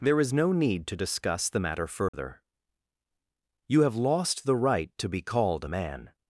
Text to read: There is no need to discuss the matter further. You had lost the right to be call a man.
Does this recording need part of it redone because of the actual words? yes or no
yes